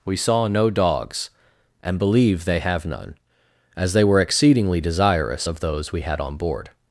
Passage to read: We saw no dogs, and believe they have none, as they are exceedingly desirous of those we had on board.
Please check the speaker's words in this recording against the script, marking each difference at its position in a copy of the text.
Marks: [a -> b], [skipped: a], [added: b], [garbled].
We saw no dogs, and believe they have none, as they [are -> were] exceedingly desirous of those we had on board.